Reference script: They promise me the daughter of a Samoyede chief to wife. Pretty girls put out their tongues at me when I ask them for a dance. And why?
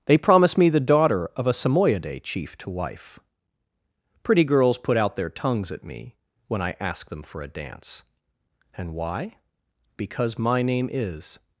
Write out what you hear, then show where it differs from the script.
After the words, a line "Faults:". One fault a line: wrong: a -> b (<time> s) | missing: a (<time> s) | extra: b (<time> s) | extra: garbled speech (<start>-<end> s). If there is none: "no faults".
They promise me the daughter of a Samoyede chief to wife. Pretty girls put out their tongues at me when I ask them for a dance. And why? Because my name is
Faults:
extra: Because my name is (10.0 s)